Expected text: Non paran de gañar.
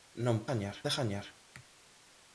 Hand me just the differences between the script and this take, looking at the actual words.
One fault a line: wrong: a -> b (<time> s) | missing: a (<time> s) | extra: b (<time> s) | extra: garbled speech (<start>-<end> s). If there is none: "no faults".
wrong: paran -> gañar (0.5 s)